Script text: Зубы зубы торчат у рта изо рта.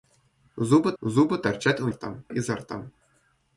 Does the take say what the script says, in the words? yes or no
yes